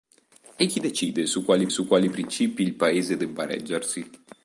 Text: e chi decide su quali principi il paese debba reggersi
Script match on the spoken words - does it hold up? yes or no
no